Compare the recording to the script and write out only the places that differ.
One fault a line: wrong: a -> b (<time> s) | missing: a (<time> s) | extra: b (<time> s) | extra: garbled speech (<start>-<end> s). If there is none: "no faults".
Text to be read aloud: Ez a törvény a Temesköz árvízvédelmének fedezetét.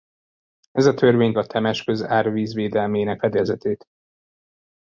no faults